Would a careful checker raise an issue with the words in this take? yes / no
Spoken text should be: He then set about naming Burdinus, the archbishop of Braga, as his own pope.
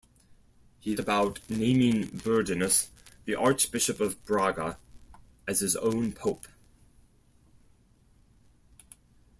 yes